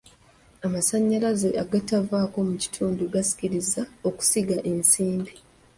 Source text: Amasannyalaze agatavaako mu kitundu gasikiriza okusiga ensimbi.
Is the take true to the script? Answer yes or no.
yes